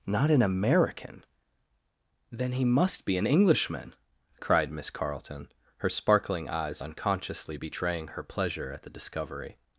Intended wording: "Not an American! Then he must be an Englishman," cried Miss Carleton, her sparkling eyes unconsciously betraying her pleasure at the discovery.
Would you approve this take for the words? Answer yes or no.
yes